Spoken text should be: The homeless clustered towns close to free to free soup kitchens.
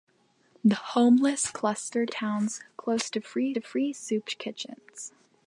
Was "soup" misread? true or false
false